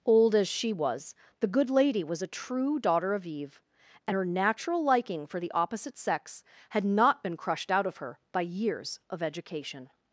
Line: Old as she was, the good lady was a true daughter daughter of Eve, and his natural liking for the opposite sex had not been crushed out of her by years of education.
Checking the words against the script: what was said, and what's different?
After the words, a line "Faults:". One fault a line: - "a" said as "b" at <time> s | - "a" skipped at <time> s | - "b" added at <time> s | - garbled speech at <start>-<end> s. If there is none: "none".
Old as she was, the good lady was a true daughter of Eve, and her natural liking for the opposite sex had not been crushed out of her by years of education.
Faults:
- "daughter" skipped at 3.1 s
- "his" said as "her" at 4.1 s